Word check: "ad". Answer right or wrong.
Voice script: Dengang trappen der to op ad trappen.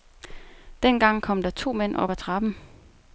right